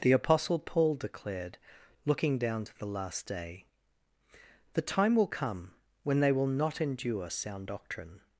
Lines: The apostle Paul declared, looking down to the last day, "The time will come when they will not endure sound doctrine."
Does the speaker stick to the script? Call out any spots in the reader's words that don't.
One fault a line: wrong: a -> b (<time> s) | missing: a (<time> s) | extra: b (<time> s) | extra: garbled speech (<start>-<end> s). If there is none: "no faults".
no faults